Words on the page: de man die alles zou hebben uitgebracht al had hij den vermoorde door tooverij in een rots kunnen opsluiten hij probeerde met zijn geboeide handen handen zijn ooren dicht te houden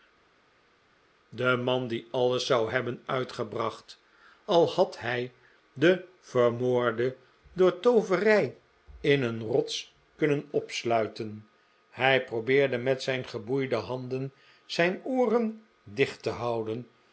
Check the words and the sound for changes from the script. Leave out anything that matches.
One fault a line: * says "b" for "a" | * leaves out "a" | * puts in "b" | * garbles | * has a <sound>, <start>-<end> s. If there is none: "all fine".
* leaves out "handen"